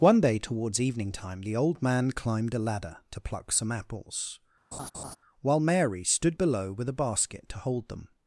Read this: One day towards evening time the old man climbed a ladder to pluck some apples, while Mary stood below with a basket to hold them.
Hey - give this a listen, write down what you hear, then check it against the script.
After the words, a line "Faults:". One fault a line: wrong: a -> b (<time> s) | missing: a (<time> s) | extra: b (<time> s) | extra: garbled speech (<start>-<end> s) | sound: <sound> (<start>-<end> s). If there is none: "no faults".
One day towards evening time the old man climbed a ladder to pluck some apples, while Mary stood below with a basket to hold them.
Faults:
sound: laugh (4.7-5.2 s)